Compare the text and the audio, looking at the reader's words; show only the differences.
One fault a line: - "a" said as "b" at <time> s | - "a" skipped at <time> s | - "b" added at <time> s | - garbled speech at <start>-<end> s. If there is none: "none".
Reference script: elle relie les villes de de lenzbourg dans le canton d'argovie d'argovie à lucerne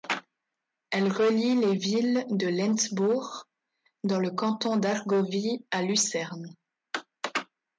- "de" skipped at 2.5 s
- "d'argovie" skipped at 5.6 s